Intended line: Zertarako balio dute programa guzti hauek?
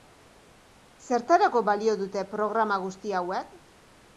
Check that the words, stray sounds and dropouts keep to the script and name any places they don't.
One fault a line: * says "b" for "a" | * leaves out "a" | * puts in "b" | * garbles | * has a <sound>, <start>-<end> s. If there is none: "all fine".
all fine